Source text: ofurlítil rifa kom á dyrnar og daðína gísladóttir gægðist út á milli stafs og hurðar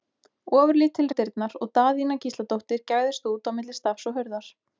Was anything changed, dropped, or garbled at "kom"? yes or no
yes